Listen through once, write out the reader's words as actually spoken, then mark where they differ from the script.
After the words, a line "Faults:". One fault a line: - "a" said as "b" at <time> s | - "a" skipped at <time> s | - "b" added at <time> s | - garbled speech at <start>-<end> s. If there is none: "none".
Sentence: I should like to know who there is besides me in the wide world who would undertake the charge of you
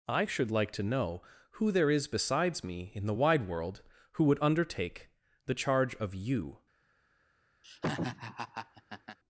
I should like to know who there is besides me in the wide world who would undertake the charge of you
Faults:
none